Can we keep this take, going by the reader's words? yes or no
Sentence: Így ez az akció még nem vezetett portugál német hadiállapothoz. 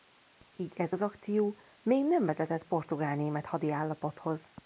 yes